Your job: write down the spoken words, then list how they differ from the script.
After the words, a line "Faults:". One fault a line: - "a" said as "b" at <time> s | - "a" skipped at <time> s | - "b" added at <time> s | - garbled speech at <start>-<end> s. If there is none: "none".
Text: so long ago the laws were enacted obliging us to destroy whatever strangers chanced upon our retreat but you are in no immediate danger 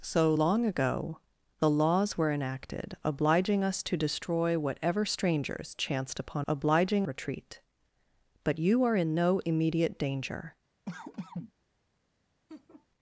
so long ago the laws were enacted obliging us to destroy whatever strangers chanced upon obliging retreat but you are in no immediate danger
Faults:
- "our" said as "obliging" at 6.5 s